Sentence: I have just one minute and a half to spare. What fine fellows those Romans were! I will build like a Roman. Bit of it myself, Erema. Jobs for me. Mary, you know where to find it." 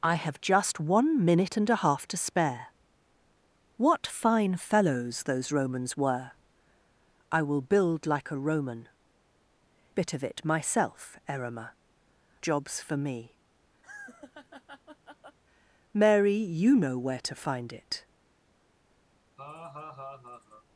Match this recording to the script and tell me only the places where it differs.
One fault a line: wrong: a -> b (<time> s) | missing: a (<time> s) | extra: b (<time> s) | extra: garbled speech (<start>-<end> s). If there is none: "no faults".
no faults